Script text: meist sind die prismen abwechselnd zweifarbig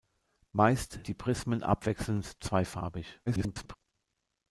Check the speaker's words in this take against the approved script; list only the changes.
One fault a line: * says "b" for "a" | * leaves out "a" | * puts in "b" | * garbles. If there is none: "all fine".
* leaves out "sind"
* garbles